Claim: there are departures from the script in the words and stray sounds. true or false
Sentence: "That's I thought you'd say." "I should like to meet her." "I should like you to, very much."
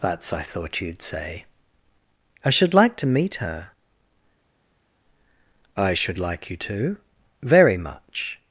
false